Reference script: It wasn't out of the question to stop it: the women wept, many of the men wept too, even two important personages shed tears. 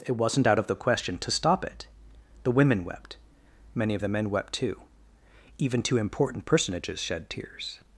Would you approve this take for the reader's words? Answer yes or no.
yes